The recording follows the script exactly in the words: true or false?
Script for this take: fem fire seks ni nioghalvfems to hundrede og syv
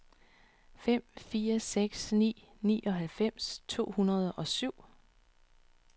true